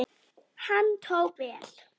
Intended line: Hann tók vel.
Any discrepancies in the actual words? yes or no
no